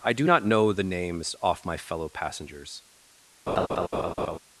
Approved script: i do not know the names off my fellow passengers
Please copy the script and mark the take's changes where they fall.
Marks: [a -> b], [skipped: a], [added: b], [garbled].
i do not know the names off my fellow passengers